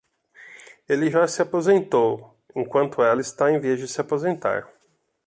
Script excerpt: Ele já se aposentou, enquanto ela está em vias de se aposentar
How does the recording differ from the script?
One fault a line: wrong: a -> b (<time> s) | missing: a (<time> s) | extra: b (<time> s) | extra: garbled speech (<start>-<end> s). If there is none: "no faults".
no faults